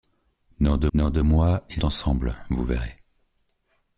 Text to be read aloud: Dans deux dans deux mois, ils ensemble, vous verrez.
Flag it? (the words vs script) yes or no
no